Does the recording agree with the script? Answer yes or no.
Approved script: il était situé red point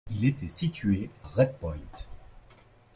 yes